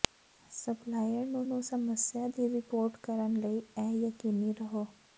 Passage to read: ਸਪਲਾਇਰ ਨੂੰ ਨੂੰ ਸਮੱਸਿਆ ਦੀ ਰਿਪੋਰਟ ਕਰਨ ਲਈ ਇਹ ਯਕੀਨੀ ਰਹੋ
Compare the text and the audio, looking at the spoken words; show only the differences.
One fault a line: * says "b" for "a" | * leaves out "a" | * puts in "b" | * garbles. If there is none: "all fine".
all fine